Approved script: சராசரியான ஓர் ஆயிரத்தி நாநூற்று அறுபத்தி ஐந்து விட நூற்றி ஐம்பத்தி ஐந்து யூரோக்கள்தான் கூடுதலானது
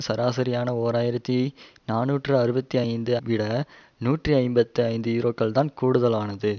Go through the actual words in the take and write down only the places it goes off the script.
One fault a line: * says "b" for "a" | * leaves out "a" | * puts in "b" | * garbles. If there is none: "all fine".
all fine